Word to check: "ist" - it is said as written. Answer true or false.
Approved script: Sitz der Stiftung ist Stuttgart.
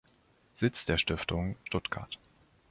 false